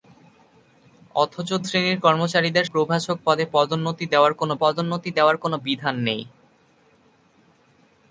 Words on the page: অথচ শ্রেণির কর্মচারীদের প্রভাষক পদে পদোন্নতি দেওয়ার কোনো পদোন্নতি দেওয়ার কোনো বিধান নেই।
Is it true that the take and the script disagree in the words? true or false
false